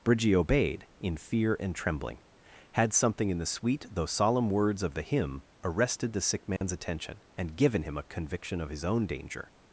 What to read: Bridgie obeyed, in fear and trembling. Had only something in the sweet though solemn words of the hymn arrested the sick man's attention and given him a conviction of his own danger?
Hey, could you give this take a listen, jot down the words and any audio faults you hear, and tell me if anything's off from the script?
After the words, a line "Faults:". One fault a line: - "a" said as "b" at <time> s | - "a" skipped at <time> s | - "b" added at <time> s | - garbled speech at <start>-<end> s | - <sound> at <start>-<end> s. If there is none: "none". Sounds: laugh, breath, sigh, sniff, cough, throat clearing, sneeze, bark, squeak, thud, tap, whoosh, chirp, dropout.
Bridgie obeyed, in fear and trembling. Had something in the sweet though solemn words of the hymn arrested the sick man's attention and given him a conviction of his own danger?
Faults:
- "only" skipped at 2.9 s
- dropout at 6.6-6.6 s